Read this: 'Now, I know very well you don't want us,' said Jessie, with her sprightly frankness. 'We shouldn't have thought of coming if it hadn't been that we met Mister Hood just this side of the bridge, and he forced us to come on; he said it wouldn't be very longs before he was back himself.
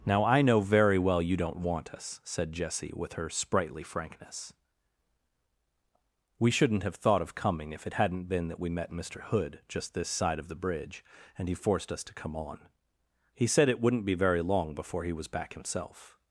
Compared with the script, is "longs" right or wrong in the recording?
wrong